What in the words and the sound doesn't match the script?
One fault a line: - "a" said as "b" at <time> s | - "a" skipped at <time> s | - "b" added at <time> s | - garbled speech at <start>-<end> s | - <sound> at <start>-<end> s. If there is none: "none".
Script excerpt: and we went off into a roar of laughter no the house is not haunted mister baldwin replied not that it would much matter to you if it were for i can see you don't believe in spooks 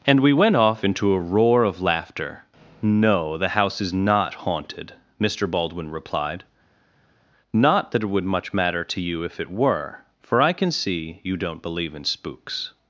none